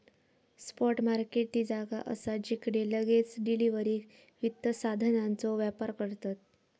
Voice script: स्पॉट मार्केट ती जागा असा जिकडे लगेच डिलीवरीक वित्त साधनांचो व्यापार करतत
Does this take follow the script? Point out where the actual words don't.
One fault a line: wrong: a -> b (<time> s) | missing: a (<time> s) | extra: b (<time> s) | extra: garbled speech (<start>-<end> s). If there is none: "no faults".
no faults